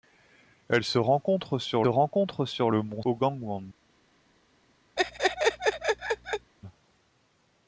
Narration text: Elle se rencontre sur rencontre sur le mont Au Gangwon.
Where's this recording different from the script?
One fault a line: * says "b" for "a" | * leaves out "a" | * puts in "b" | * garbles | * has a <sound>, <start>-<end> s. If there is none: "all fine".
* has a laugh, 5.0-6.5 s